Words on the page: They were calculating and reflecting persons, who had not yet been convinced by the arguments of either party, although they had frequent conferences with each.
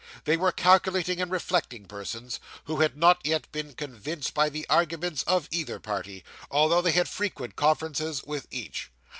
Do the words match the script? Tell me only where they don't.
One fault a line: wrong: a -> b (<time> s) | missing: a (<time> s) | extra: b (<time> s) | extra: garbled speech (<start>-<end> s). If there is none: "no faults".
no faults